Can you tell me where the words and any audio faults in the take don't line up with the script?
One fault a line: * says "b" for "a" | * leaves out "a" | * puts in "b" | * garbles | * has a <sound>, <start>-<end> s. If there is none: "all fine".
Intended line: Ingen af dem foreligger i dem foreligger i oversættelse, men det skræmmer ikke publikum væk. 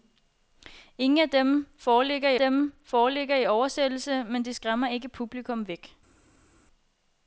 all fine